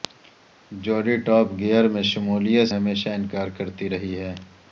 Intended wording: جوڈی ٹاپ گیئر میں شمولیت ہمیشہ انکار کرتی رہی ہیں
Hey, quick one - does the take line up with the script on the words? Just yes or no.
yes